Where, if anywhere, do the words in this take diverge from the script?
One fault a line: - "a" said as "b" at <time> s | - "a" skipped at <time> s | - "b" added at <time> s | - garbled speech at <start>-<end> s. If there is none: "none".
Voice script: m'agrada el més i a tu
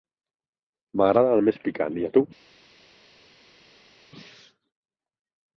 - "picant" added at 1.7 s